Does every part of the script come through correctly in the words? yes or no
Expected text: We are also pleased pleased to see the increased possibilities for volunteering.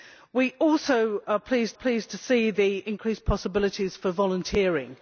yes